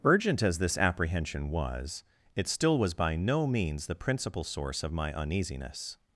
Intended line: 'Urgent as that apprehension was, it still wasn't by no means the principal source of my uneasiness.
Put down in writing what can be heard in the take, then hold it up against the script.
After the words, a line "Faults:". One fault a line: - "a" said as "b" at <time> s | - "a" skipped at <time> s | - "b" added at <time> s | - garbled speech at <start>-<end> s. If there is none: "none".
'Urgent as this apprehension was, it still was by no means the principal source of my uneasiness.
Faults:
- "that" said as "this" at 0.6 s
- "wasn't" said as "was" at 2.8 s